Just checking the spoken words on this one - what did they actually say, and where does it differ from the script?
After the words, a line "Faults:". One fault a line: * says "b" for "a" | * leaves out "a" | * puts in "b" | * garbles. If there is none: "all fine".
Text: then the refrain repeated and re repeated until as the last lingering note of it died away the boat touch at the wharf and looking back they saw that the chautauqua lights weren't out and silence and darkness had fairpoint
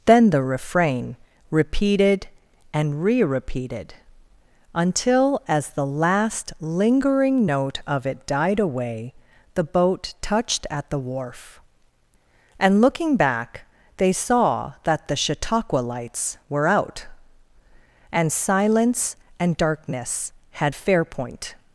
then the refrain repeated and re repeated until as the last lingering note of it died away the boat touched at the wharf and looking back they saw that the chautauqua lights were out and silence and darkness had fairpoint
Faults:
* says "touched" for "touch"
* says "were" for "weren't"